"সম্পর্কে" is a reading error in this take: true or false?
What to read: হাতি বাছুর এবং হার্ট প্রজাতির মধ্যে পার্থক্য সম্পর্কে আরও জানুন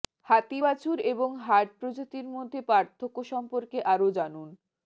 false